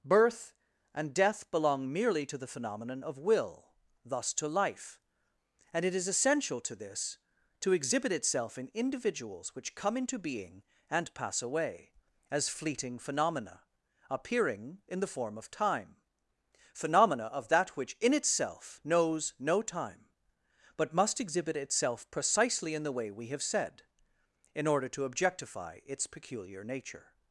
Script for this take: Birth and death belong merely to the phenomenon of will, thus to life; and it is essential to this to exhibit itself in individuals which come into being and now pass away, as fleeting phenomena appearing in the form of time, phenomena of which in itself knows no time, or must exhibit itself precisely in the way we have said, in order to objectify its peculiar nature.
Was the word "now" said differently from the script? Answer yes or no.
yes